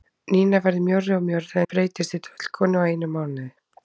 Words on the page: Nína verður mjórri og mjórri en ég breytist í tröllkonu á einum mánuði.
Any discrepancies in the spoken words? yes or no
yes